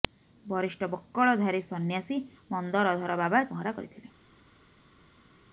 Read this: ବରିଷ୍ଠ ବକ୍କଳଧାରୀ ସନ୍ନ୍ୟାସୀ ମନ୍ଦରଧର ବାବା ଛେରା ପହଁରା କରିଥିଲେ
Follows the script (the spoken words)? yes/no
no